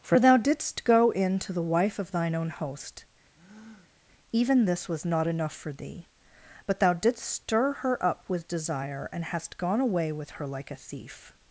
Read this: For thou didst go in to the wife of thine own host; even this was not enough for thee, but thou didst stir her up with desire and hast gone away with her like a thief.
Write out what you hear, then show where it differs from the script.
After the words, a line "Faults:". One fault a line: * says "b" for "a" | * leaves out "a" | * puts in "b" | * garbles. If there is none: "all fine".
For thou didst go in to the wife of thine own host; even this was not enough for thee, but thou didst stir her up with desire and hast gone away with her like a thief.
Faults:
all fine